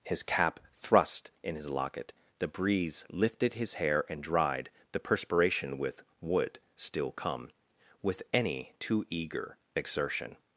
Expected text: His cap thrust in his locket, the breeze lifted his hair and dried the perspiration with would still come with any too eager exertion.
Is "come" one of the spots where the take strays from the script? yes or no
no